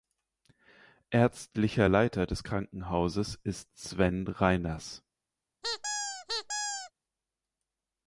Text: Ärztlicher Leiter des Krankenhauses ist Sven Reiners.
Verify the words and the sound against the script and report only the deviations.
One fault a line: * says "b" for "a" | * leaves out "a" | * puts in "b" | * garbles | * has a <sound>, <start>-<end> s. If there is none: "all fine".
* has a squeak, 5.6-6.9 s